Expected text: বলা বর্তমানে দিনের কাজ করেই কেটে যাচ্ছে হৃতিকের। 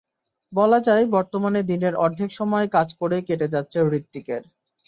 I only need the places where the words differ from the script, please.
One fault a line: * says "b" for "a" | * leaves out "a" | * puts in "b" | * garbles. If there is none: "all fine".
* puts in "যায়"
* puts in "অর্ধেক সময়"